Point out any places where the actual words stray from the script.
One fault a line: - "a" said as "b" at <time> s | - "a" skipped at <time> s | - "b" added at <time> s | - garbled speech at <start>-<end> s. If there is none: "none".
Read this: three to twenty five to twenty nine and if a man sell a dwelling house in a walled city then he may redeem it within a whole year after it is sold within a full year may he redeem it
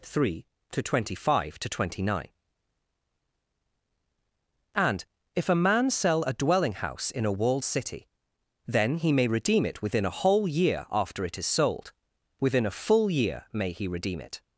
none